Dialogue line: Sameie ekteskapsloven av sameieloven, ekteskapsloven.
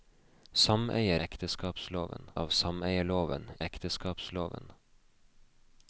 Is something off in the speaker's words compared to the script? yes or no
no